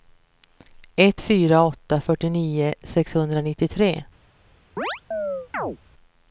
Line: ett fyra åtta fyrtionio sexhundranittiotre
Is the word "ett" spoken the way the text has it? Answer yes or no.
yes